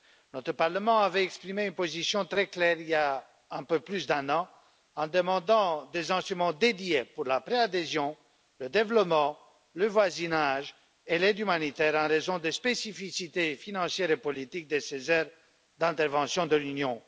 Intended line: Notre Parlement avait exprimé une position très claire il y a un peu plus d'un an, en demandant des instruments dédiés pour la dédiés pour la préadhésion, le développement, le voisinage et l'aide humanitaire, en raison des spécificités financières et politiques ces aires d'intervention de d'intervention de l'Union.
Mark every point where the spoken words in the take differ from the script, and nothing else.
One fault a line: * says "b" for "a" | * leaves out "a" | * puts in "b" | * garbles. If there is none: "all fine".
* leaves out "dédiés pour la"
* puts in "de"
* leaves out "d'intervention de"